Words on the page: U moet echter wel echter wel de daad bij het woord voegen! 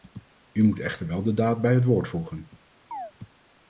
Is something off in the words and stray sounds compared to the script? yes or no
yes